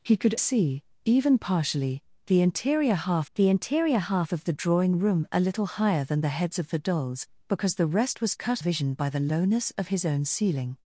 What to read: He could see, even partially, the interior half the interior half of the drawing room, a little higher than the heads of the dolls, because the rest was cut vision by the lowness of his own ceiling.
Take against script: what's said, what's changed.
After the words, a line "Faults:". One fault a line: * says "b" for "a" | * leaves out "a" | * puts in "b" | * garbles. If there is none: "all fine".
He could see, even partially, the interior half the interior half of the drawing room, a little higher than the heads of the dolls, because the rest was cut vision by the lowness of his own ceiling.
Faults:
all fine